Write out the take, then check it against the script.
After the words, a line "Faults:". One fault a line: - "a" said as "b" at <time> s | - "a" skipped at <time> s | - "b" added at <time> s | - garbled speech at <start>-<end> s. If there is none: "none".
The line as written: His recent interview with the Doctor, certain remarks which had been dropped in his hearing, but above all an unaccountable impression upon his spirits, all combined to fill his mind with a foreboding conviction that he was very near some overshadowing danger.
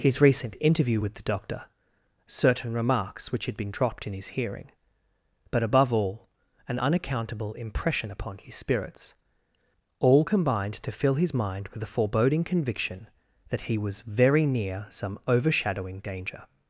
His recent interview with the Doctor, certain remarks which had been dropped in his hearing, but above all an unaccountable impression upon his spirits, all combined to fill his mind with a foreboding conviction that he was very near some overshadowing danger.
Faults:
none